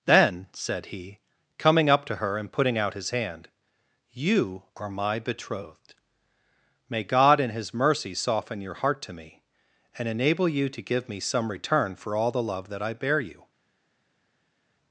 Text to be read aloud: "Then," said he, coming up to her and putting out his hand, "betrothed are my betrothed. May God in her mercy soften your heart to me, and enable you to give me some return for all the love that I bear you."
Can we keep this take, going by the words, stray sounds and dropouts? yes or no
no